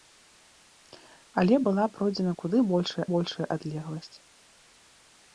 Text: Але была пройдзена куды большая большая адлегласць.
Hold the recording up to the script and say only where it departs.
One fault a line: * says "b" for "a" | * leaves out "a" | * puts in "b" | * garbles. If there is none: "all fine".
all fine